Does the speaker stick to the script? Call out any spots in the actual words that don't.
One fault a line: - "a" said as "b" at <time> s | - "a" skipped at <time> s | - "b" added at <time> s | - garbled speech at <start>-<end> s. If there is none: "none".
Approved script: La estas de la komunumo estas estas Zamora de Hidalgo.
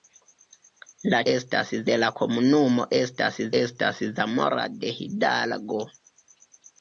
none